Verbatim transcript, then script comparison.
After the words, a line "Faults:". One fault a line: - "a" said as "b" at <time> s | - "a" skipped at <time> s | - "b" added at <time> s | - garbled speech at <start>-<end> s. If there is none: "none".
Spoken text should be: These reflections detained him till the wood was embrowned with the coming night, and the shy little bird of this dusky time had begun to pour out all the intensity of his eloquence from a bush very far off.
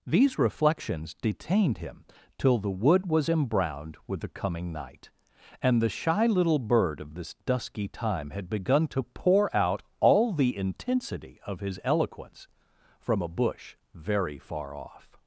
These reflections detained him till the wood was embrowned with the coming night, and the shy little bird of this dusky time had begun to pour out all the intensity of his eloquence from a bush very far off.
Faults:
none